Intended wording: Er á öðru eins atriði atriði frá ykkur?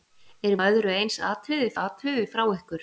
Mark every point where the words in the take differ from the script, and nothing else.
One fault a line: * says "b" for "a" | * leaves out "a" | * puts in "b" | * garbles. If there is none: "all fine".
all fine